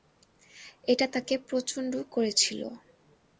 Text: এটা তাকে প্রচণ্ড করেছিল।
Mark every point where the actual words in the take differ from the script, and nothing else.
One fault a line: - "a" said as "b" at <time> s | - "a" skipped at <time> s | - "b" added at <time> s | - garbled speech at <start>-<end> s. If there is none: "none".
none